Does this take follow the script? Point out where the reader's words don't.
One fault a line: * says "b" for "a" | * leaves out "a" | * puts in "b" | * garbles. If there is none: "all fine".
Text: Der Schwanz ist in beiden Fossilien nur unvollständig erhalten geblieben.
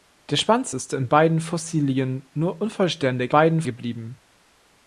* says "beiden" for "erhalten"